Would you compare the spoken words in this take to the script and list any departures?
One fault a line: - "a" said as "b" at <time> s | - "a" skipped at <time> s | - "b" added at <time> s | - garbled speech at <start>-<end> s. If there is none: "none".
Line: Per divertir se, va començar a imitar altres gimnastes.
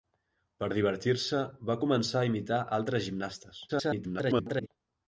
- garbled speech at 3.7-4.7 s